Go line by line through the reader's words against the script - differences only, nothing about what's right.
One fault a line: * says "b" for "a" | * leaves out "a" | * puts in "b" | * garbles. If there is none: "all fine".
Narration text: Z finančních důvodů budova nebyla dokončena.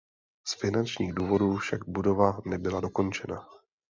* puts in "však"